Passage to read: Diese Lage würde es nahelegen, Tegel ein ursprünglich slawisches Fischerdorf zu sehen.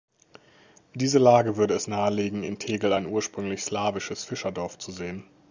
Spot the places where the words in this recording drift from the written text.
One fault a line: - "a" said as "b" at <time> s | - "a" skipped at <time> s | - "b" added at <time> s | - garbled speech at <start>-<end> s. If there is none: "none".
- "in" added at 2.4 s